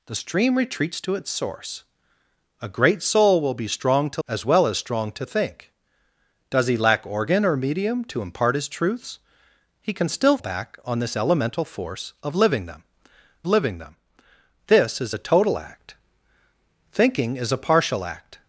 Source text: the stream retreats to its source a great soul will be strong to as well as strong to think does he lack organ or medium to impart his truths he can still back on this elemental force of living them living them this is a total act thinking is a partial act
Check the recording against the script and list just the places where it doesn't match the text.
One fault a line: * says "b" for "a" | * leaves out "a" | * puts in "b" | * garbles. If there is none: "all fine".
all fine